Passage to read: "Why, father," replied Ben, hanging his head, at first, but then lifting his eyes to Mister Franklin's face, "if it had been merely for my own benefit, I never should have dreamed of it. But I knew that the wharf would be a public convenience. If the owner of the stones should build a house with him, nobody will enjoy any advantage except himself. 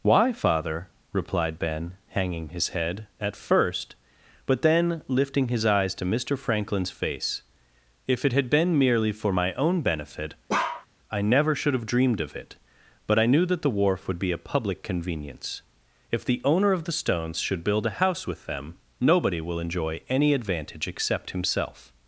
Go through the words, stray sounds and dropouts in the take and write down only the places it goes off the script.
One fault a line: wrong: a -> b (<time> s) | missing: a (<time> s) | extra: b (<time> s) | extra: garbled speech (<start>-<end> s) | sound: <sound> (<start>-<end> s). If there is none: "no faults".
sound: bark (10.5-10.9 s)
wrong: him -> them (18.5 s)